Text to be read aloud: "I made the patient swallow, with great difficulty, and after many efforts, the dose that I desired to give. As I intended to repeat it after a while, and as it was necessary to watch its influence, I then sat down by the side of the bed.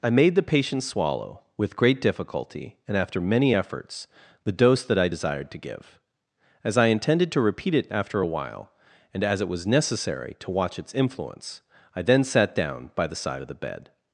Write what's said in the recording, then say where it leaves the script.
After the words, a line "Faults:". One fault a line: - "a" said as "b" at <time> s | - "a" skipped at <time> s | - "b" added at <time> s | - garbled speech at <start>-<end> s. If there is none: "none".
"I made the patient swallow, with great difficulty, and after many efforts, the dose that I desired to give. As I intended to repeat it after a while, and as it was necessary to watch its influence, I then sat down by the side of the bed.
Faults:
none